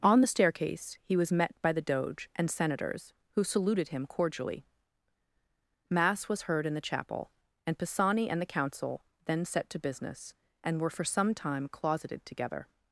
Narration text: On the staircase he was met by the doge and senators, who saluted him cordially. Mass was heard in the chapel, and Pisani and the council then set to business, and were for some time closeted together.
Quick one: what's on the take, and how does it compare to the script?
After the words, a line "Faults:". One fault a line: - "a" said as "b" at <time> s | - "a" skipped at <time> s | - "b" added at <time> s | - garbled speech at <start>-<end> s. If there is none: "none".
On the staircase he was met by the doge and senators, who saluted him cordially. Mass was heard in the chapel, and Pisani and the council then set to business, and were for some time closeted together.
Faults:
none